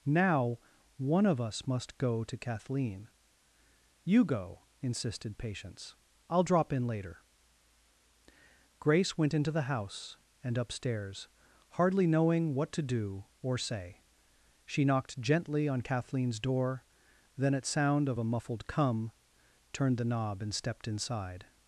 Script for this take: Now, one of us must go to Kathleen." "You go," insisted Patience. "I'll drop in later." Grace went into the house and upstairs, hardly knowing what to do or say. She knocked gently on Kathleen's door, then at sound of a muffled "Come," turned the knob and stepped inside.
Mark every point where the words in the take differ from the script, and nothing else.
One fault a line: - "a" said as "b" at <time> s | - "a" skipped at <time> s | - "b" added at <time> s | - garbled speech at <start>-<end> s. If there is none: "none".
none